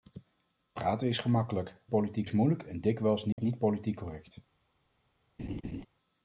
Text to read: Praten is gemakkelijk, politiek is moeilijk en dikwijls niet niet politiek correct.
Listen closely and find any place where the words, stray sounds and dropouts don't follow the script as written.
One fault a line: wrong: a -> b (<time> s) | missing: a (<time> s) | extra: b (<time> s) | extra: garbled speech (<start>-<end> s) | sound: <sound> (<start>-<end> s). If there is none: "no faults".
sound: dropout (3.3-3.4 s)
sound: laugh (5.4-5.8 s)